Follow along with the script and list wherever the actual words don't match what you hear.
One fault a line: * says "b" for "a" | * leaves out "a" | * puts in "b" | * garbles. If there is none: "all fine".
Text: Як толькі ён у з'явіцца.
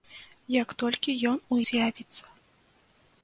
all fine